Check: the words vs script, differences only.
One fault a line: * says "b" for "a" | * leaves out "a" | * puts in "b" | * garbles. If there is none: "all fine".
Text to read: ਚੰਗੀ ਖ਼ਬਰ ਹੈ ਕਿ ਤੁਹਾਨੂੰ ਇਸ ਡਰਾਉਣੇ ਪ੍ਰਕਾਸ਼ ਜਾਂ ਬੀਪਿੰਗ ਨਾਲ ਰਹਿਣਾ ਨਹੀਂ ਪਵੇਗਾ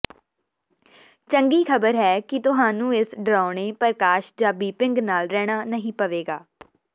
all fine